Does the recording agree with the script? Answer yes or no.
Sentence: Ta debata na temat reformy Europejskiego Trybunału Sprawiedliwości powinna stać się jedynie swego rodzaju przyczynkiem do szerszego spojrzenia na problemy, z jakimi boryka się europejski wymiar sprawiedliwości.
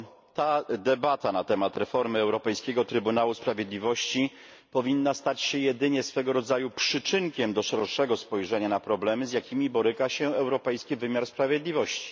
yes